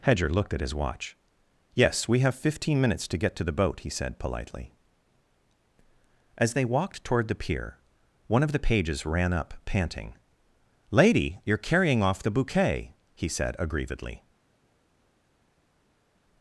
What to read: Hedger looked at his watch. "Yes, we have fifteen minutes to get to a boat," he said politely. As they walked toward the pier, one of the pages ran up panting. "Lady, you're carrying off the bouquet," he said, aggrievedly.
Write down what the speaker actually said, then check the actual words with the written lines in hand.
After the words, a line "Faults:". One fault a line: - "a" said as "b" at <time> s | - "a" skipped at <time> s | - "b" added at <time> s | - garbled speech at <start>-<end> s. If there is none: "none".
Hedger looked at his watch. "Yes, we have fifteen minutes to get to the boat," he said politely. As they walked toward the pier, one of the pages ran up panting. "Lady, you're carrying off the bouquet," he said, aggrievedly.
Faults:
- "a" said as "the" at 3.4 s